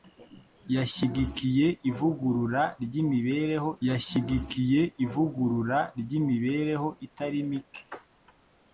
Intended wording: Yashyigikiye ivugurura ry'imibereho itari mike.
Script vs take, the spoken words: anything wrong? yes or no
yes